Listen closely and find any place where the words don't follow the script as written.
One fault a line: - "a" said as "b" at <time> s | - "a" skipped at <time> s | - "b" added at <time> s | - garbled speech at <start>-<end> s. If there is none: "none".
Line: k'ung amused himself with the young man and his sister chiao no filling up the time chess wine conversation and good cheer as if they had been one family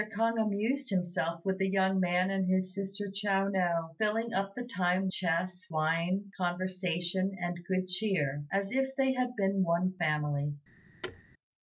none